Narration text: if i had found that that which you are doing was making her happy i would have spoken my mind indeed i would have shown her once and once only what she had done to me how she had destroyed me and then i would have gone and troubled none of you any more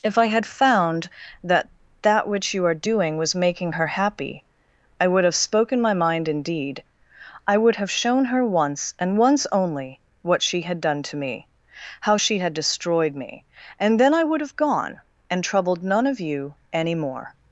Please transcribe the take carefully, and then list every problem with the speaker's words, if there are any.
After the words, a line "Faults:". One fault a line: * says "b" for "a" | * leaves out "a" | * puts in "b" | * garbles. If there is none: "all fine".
if i had found that that which you are doing was making her happy i would have spoken my mind indeed i would have shown her once and once only what she had done to me how she had destroyed me and then i would have gone and troubled none of you any more
Faults:
all fine